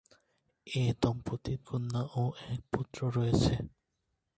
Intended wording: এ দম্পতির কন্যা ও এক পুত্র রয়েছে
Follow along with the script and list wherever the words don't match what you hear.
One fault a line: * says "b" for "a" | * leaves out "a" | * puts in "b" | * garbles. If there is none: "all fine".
all fine